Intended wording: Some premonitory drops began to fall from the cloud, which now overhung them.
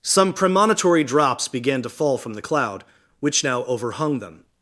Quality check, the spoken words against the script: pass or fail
pass